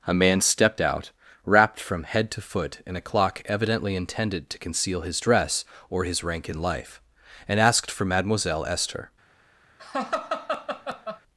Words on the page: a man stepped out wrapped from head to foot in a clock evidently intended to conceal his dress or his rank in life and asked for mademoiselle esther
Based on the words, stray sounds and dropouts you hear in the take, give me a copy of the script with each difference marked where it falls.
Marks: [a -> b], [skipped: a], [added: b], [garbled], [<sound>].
a man stepped out wrapped from head to foot in a clock evidently intended to conceal his dress or his rank in life and asked for mademoiselle esther [laugh]